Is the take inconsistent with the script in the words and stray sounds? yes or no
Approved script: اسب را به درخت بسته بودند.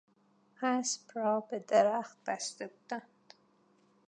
no